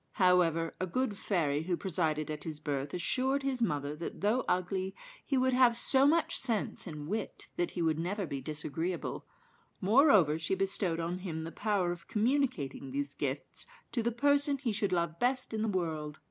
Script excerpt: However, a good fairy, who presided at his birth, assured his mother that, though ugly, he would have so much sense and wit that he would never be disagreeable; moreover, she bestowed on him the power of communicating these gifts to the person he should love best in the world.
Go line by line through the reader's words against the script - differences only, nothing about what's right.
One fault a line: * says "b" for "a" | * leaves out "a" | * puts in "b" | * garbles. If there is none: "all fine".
all fine